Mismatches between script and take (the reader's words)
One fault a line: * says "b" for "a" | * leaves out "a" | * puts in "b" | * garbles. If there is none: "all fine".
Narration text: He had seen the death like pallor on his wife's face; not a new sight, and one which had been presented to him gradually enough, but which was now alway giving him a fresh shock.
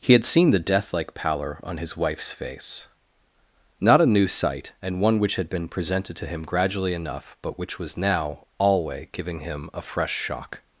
all fine